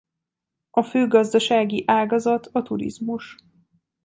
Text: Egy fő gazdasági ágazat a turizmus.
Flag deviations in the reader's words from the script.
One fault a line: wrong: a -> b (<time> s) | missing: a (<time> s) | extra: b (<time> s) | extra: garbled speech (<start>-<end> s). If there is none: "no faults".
wrong: Egy -> A (0.7 s)